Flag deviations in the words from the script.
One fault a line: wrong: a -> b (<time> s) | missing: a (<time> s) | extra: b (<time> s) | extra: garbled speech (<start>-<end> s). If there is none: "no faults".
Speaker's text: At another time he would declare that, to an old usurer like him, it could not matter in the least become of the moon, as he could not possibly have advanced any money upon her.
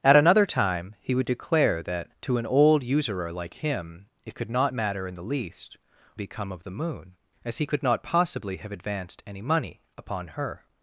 no faults